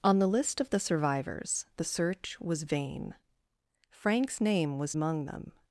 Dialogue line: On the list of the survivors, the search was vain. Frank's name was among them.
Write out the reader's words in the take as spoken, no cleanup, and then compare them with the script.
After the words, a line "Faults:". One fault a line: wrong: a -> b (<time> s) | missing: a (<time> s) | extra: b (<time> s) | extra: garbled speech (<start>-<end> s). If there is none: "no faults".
On the list of the survivors, the search was vain. Frank's name was among them.
Faults:
no faults